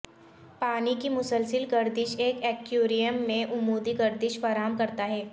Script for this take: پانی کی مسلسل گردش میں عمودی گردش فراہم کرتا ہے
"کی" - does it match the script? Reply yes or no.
yes